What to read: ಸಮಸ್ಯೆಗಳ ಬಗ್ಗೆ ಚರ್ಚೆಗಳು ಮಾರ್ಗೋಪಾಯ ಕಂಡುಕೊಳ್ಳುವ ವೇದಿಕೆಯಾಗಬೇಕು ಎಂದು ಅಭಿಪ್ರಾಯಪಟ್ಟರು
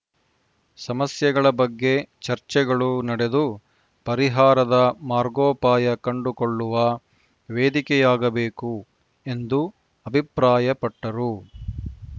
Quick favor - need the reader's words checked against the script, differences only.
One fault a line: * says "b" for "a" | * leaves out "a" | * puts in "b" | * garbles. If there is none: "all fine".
* puts in "ನಡೆದು ಪರಿಹಾರದ"